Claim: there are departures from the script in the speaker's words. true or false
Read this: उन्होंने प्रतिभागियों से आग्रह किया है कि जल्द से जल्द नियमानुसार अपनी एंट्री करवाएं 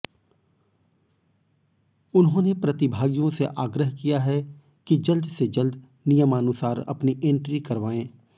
false